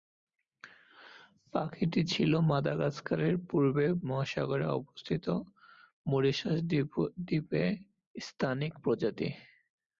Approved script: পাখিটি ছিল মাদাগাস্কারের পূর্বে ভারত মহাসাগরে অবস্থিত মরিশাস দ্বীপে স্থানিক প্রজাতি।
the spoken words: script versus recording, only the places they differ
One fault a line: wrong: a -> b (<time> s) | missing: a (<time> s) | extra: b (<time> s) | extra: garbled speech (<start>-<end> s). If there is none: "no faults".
missing: ভারত (3.9 s)